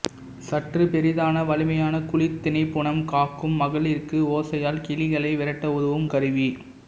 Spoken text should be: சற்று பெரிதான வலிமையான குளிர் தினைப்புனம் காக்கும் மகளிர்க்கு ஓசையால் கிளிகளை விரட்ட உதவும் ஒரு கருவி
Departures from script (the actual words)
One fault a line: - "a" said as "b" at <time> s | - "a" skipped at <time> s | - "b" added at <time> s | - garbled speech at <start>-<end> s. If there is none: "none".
- "ஒரு" skipped at 6.1 s